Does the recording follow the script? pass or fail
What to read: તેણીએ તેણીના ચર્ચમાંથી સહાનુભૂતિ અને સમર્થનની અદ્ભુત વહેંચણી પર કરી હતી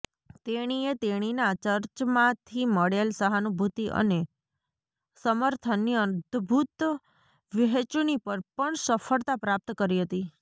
fail